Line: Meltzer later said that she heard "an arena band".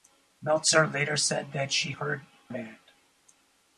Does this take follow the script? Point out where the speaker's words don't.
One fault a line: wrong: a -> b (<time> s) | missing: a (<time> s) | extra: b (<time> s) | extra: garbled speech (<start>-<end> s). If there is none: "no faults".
missing: an arena (2.2 s)